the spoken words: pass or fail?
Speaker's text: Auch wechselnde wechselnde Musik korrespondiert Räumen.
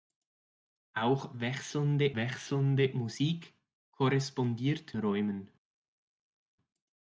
pass